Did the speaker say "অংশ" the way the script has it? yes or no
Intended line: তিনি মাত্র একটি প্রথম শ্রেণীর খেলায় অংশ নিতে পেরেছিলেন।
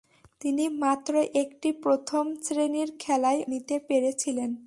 no